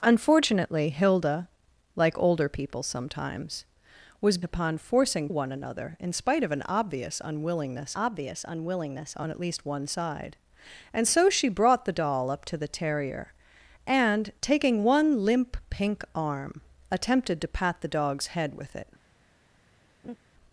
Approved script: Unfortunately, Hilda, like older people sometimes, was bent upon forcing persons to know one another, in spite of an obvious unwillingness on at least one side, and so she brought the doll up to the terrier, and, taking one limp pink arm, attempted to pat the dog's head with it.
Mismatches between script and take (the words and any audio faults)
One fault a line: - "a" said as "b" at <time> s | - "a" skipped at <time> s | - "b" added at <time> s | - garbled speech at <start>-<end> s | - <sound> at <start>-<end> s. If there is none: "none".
- "bent" skipped at 4.4 s
- "persons to know" skipped at 5.3 s
- "obvious unwillingness" added at 7.9 s
- laugh at 20.0-20.2 s